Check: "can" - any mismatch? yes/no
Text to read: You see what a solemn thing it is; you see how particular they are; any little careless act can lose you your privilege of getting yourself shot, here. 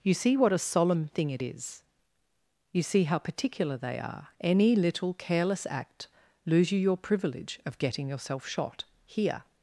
yes